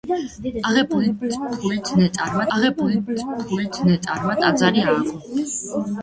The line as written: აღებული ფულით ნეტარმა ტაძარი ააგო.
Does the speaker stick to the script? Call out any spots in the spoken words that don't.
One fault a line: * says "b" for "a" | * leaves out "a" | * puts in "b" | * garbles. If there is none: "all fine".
* puts in "აღებული ფულით ნეტარმა"